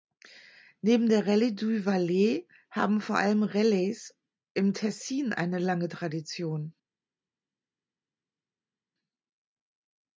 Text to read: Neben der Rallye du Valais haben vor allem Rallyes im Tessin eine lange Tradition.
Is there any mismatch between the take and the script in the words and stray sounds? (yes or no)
no